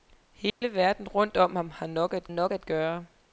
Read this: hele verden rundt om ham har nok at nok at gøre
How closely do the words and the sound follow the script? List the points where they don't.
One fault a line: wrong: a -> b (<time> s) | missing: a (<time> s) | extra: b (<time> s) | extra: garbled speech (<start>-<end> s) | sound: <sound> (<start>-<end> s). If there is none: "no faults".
sound: dropout (0.5-0.6 s)